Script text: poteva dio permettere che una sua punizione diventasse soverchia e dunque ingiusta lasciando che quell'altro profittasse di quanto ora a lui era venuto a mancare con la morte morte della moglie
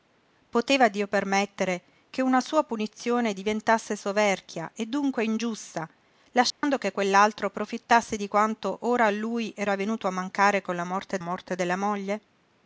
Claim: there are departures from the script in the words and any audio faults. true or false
true